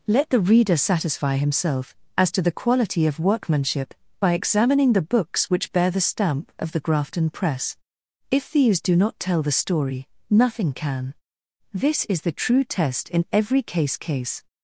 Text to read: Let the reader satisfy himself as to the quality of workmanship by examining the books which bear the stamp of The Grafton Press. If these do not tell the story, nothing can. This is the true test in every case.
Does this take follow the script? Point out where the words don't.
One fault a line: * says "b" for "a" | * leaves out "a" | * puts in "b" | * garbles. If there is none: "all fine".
* puts in "case"